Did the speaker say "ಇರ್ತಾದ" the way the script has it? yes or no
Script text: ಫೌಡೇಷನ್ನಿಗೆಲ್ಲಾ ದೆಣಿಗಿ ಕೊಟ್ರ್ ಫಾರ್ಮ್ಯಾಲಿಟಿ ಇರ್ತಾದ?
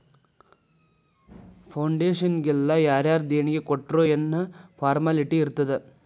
yes